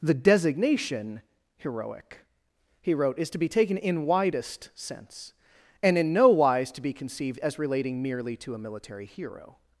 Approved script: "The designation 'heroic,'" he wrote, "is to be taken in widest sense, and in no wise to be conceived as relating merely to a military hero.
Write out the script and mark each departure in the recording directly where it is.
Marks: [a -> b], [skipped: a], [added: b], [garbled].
"The designation 'heroic,'" he wrote, "is to be taken in widest sense, and in no wise to be conceived as relating merely to a military hero.